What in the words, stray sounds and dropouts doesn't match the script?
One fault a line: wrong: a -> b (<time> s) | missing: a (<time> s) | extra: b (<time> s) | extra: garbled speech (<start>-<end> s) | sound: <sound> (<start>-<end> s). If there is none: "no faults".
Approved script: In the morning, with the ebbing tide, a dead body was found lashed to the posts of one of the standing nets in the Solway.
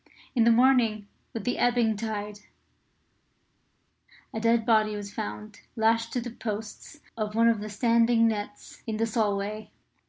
no faults